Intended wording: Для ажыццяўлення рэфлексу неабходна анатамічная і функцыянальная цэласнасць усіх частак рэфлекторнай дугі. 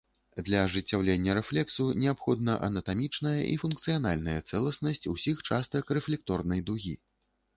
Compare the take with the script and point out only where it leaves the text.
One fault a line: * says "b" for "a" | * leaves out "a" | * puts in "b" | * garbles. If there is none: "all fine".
all fine